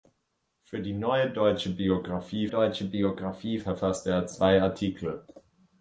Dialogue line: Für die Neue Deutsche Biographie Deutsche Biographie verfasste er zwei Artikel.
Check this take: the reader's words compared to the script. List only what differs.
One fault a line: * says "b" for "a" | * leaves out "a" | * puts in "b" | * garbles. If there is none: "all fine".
all fine